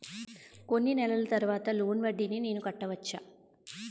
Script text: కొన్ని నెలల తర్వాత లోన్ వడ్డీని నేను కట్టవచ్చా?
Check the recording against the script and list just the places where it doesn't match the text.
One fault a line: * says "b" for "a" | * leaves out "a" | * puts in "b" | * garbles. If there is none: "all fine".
all fine